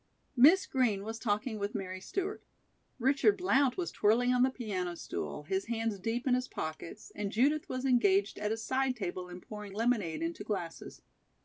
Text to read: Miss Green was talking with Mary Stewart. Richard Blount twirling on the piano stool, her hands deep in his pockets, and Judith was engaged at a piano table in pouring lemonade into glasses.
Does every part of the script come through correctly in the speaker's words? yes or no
no